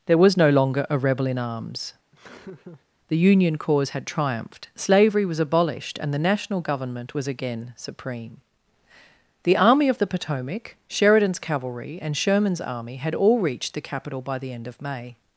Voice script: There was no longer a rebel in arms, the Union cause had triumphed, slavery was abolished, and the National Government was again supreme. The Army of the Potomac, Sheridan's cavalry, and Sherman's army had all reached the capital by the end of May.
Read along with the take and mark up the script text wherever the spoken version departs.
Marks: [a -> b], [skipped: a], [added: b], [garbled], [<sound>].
There was no longer a rebel in arms, [laugh] the Union cause had triumphed, slavery was abolished, and the National Government was again supreme. The Army of the Potomac, Sheridan's cavalry, and Sherman's army had all reached the capital by the end of May.